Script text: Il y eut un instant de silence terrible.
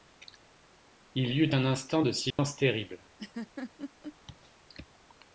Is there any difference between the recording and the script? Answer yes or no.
no